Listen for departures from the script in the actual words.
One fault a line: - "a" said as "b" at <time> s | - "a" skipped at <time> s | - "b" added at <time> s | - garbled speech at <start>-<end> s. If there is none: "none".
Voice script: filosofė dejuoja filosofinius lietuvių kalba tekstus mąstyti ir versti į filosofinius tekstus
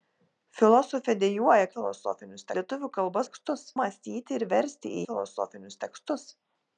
none